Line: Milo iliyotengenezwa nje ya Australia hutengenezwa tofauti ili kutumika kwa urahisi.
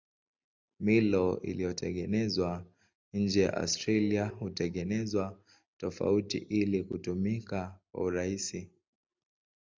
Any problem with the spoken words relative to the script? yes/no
no